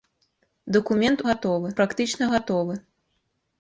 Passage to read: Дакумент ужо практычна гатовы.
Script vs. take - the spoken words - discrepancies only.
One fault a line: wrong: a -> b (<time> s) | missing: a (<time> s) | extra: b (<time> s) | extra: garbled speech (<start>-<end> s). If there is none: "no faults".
wrong: ужо -> гатовы (1.3 s)